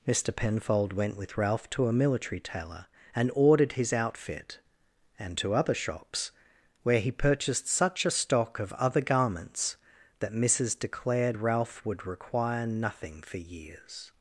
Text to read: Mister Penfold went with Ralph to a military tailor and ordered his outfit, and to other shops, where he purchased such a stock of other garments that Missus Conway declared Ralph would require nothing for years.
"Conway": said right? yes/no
no